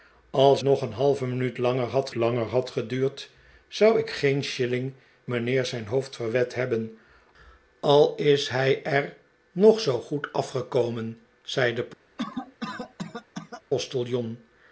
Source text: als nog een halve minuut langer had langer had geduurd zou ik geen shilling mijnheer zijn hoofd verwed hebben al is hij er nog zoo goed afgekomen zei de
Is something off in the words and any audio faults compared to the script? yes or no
yes